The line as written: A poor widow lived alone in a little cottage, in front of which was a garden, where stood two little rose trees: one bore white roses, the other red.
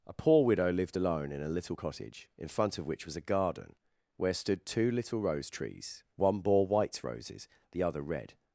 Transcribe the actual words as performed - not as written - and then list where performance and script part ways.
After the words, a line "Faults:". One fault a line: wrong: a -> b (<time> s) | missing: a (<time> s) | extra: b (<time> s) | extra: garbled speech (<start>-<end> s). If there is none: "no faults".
A poor widow lived alone in a little cottage, in front of which was a garden, where stood two little rose trees: one bore white roses, the other red.
Faults:
no faults